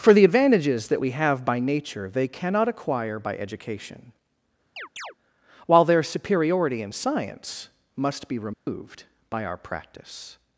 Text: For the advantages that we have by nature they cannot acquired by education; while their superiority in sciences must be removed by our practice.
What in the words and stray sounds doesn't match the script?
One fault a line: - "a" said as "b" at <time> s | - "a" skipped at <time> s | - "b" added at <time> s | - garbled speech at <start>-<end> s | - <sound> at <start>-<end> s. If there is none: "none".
- "acquired" said as "acquire" at 2.7 s
- chirp at 4.8-5.1 s
- "sciences" said as "science" at 6.9 s
- dropout at 8.5-8.7 s